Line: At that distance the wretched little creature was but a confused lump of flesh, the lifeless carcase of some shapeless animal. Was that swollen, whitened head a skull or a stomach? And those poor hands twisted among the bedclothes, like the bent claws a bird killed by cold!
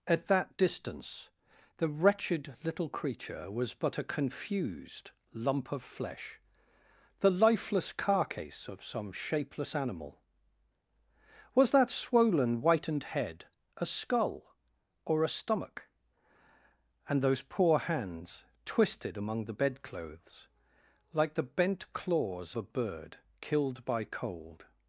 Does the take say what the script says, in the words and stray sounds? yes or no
yes